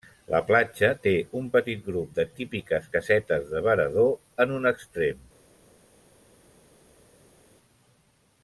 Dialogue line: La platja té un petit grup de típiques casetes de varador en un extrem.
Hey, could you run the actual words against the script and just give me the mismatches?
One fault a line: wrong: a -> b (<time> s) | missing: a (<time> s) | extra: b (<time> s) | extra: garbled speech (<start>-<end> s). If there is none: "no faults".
no faults